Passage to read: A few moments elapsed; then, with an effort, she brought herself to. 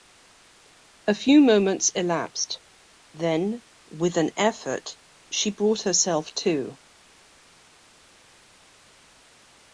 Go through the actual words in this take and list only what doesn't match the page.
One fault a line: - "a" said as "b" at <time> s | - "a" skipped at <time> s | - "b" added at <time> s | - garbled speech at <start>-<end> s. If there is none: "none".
none